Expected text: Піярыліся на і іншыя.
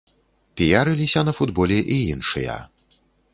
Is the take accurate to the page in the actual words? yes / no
no